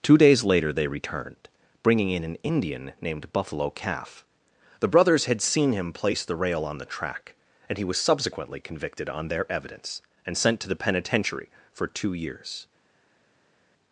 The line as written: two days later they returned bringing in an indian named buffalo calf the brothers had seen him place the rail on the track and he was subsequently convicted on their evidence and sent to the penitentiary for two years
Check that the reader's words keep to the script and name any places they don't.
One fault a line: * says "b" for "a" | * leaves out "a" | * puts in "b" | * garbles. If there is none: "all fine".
all fine